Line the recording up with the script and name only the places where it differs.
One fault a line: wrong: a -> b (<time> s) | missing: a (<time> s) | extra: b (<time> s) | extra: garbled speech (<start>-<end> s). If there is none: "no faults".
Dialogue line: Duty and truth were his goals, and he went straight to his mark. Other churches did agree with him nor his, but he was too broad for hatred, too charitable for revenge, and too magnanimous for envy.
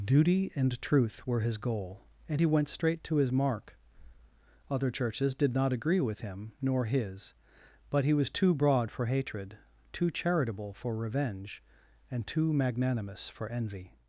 wrong: goals -> goal (1.6 s)
extra: not (5.5 s)